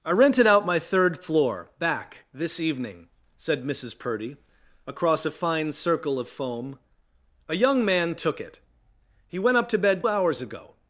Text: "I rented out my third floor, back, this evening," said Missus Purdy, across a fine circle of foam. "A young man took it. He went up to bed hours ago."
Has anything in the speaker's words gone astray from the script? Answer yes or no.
no